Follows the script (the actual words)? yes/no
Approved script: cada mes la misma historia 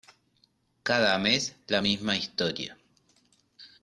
yes